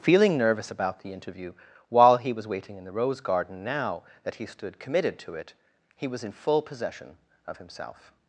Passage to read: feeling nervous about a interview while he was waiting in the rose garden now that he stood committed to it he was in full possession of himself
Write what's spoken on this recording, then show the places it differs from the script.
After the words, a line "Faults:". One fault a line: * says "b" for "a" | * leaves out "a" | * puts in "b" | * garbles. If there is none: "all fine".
feeling nervous about the interview while he was waiting in the rose garden now that he stood committed to it he was in full possession of himself
Faults:
* says "the" for "a"